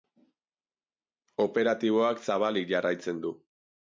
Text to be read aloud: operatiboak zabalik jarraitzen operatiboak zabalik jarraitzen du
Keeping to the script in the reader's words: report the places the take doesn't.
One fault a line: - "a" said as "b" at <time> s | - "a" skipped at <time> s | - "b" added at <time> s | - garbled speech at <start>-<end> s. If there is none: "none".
- "operatiboak zabalik jarraitzen" skipped at 3.2 s